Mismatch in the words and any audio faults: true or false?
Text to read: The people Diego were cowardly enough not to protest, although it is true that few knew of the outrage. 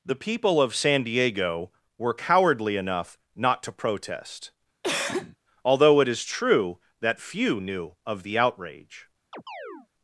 true